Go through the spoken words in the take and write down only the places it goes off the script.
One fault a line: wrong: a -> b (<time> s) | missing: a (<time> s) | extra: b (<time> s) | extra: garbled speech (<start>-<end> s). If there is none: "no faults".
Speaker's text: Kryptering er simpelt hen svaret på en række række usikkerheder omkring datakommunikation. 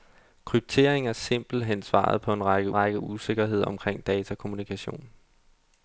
no faults